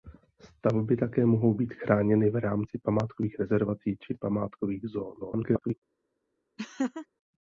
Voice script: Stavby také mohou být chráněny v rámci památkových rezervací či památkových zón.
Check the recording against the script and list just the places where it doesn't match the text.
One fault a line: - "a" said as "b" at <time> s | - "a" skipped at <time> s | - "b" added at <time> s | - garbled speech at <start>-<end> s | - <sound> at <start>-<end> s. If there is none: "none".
- garbled speech at 5.2-5.7 s
- laugh at 6.6-7.1 s